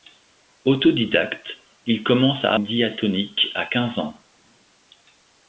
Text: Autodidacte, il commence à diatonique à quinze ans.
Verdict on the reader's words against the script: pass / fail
pass